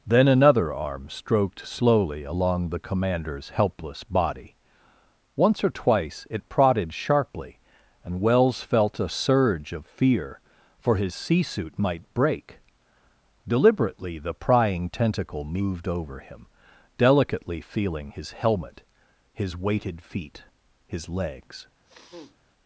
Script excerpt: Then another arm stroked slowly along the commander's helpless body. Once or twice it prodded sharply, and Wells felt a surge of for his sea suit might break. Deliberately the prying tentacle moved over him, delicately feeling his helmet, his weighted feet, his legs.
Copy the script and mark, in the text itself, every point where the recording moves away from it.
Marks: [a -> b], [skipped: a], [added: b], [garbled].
Then another arm stroked slowly along the commander's helpless body. Once or twice it prodded sharply, and Wells felt a surge of [added: fear] for his sea suit might break. Deliberately the prying tentacle moved over him, delicately feeling his helmet, his weighted feet, his legs.